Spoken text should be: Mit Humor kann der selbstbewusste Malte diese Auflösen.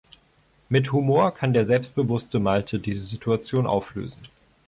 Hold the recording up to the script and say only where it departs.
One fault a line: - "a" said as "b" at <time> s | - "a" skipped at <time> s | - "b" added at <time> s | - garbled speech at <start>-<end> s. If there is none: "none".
- "Situation" added at 3.0 s